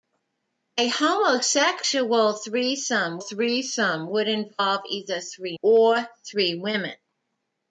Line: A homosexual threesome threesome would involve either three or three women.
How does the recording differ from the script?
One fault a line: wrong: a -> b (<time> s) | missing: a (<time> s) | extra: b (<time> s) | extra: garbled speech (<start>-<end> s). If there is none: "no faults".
no faults